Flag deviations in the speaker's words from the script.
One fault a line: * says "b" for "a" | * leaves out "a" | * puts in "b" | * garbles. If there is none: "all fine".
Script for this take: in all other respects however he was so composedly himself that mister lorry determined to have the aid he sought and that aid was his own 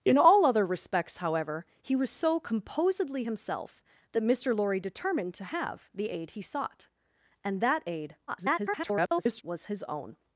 * garbles